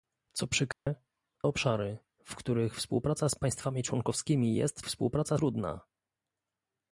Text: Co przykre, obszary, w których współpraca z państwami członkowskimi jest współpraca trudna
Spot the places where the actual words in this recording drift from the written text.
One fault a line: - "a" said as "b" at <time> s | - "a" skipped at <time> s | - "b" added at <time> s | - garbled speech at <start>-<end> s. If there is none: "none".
none